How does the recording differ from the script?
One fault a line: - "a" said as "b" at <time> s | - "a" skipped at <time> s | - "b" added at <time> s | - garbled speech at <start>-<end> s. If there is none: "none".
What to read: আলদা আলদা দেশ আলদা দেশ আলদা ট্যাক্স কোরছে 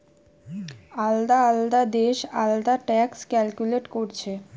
- "দেশ আলদা ট্যাক্স" said as "ট্যাক্স ক্যালকুলেট" at 2.9 s